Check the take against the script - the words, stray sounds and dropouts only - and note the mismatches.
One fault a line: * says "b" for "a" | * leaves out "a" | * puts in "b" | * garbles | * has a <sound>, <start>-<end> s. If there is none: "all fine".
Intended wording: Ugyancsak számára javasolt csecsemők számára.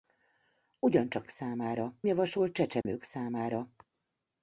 * has a dropout, 2.8-2.9 s